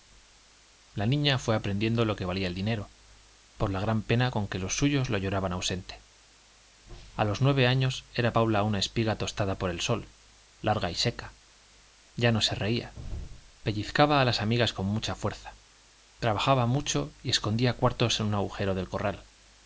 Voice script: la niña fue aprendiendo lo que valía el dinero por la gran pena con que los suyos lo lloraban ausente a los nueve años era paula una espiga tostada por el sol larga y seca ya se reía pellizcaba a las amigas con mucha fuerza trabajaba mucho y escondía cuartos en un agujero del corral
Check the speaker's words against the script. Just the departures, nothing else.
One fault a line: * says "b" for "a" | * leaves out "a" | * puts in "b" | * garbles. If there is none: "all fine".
* puts in "no"